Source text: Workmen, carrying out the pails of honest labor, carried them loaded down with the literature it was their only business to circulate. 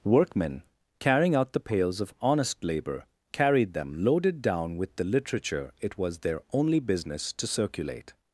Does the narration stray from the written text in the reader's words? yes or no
no